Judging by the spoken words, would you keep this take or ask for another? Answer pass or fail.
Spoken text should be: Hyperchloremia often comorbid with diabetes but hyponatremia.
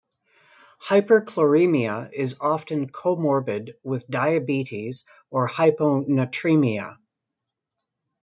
fail